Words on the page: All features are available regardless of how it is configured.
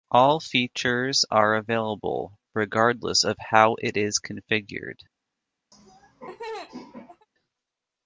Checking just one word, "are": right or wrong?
right